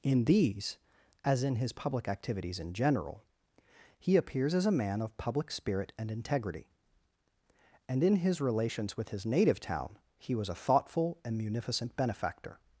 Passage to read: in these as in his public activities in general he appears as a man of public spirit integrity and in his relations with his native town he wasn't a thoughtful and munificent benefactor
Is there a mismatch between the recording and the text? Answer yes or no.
yes